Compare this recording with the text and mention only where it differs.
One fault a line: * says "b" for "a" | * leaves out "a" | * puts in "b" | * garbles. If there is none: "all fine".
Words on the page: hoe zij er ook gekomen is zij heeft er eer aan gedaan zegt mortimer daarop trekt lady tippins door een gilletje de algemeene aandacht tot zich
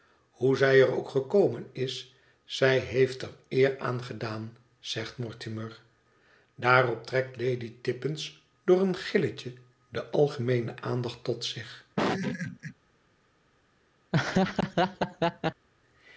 all fine